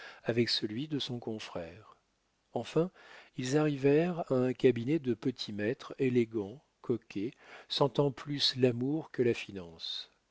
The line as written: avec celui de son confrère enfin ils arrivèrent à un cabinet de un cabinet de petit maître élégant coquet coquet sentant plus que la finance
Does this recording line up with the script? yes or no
no